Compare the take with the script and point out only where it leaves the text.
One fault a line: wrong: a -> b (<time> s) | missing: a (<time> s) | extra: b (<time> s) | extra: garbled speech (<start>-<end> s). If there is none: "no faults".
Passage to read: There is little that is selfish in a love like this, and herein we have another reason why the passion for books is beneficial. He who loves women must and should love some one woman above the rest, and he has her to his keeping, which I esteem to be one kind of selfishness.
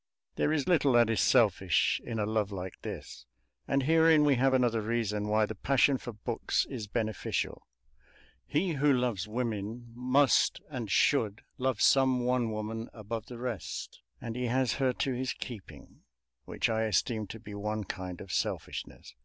no faults